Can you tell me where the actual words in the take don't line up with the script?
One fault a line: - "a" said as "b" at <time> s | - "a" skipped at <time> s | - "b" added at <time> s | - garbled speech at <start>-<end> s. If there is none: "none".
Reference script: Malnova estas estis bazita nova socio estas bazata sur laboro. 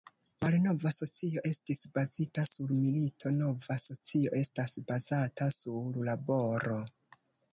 - "estas" said as "socio" at 0.9 s
- "sur milito" added at 2.5 s